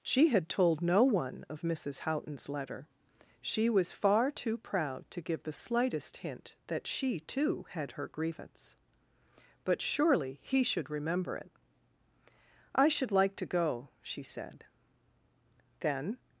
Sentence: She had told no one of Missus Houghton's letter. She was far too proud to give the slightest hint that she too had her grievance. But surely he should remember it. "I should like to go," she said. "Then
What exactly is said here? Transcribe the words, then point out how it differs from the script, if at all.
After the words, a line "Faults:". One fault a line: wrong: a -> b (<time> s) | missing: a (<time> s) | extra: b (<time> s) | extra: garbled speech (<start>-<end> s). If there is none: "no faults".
She had told no one of Missus Houghton's letter. She was far too proud to give the slightest hint that she too had her grievance. But surely he should remember it. "I should like to go," she said. "Then
Faults:
no faults